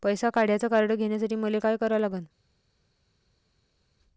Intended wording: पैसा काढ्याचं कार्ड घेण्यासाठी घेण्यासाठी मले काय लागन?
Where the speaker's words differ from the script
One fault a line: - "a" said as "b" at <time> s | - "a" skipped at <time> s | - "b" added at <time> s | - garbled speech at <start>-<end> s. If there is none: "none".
- "घेण्यासाठी" skipped at 1.4 s
- "करा" added at 1.8 s